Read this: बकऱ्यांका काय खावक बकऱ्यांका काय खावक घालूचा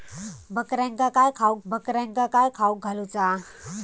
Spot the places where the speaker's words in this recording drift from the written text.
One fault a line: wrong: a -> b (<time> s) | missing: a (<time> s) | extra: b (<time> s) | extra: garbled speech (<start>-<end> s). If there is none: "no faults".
no faults